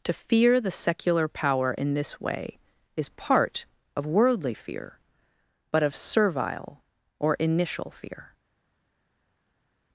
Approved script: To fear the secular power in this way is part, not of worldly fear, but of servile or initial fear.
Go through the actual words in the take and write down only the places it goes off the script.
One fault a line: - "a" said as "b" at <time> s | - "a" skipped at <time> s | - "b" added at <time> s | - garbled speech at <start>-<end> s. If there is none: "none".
- "not" skipped at 3.6 s